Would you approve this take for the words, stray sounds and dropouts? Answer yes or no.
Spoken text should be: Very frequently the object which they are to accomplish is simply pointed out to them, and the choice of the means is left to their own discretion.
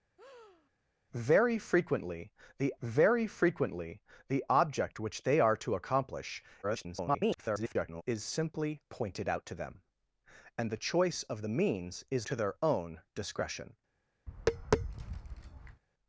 no